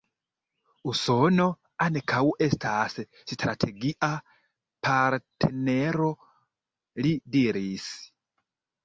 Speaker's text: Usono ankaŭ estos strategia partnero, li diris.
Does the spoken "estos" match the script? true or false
false